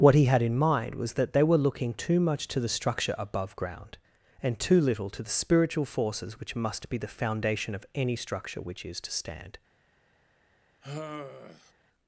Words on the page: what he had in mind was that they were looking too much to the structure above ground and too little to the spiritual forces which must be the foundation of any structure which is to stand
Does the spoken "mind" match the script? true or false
true